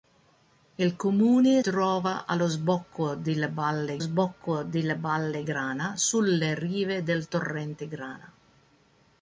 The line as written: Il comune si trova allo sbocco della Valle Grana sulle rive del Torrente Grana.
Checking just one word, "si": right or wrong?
wrong